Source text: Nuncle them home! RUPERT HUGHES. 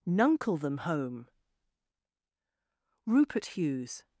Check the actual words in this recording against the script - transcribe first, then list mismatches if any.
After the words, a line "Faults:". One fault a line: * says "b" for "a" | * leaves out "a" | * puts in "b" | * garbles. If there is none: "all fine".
Nuncle them home! RUPERT HUGHES.
Faults:
all fine